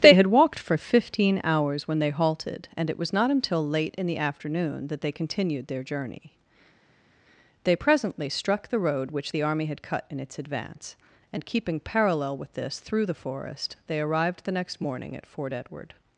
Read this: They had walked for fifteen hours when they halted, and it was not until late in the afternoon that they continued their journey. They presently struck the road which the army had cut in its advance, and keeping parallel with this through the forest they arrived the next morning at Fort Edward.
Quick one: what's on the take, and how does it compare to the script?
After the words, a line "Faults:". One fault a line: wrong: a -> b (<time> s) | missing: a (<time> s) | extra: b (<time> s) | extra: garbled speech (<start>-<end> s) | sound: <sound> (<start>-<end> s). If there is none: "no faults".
They had walked for fifteen hours when they halted, and it was not until late in the afternoon that they continued their journey. They presently struck the road which the army had cut in its advance, and keeping parallel with this through the forest they arrived the next morning at Fort Edward.
Faults:
no faults